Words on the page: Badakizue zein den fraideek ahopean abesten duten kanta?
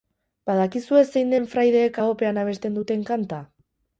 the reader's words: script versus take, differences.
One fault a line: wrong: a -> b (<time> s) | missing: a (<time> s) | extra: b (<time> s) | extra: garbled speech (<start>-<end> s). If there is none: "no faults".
no faults